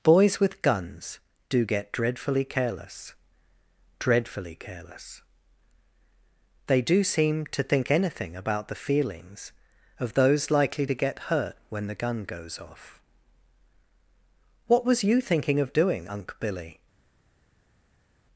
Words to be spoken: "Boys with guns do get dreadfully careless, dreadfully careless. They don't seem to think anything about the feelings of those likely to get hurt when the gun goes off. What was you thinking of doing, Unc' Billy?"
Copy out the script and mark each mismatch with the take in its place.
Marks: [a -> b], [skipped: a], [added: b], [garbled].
"Boys with guns do get dreadfully careless, dreadfully careless. They [don't -> do] seem to think anything about the feelings of those likely to get hurt when the gun goes off. What was you thinking of doing, Unc' Billy?"